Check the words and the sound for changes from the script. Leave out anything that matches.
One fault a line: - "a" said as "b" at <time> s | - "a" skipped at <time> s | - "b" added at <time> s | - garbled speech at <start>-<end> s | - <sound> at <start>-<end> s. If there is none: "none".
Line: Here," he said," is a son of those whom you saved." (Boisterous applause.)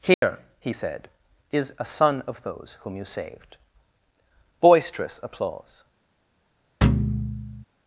- dropout at 0.1-0.2 s
- thud at 6.8-7.6 s